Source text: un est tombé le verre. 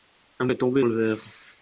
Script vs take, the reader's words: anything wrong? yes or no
no